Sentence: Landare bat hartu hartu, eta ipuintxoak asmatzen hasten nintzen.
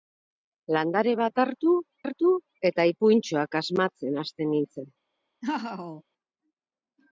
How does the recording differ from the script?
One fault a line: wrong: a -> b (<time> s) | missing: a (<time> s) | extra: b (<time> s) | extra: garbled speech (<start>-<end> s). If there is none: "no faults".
no faults